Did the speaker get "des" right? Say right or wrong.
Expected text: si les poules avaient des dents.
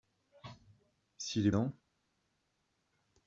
wrong